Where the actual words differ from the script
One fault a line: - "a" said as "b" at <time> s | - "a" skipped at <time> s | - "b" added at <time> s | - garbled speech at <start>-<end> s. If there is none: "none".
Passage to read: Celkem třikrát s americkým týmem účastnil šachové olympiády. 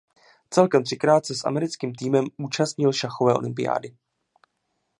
- "se" added at 1.2 s